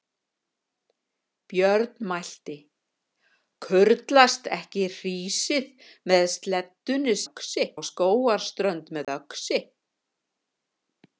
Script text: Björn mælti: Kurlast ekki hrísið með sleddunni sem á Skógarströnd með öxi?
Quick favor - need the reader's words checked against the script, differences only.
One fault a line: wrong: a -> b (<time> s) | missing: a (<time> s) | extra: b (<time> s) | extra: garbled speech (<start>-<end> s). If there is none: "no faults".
wrong: sem -> öxi (7.2 s)